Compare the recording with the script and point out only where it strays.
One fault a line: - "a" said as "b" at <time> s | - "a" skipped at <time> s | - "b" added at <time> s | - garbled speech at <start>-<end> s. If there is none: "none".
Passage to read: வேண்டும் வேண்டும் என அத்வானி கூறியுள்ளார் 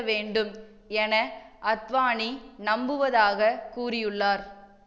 - "வேண்டும்" skipped at 0.5 s
- "நம்புவதாக" added at 2.6 s